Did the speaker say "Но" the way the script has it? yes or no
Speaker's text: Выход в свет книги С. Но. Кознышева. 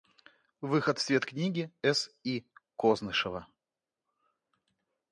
no